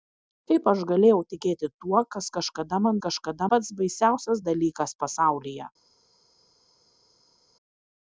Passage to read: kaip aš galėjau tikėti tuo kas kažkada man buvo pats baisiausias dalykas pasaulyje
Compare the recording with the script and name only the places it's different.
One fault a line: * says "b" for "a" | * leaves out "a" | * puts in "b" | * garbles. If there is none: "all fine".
* says "kažkada" for "buvo"